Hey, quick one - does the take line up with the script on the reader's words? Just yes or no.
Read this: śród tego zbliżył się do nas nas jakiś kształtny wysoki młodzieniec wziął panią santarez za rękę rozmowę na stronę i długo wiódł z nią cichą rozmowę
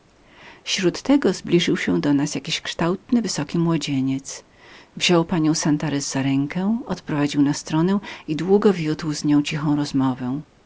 no